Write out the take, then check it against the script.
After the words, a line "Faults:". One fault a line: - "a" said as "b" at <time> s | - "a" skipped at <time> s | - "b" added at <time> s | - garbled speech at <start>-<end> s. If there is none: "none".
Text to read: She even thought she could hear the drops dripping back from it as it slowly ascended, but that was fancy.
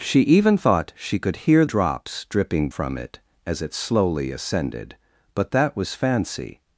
She even thought she could hear drops dripping from it as it slowly ascended, but that was fancy.
Faults:
- "the" skipped at 1.7 s
- "back" skipped at 2.7 s